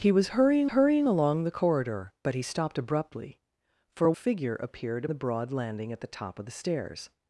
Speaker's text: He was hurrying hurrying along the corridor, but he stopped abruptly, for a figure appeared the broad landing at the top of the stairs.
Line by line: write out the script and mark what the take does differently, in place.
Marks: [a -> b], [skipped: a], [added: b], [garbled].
He was hurrying hurrying along the corridor, but he stopped abruptly, for a figure appeared the broad landing at the top of the stairs.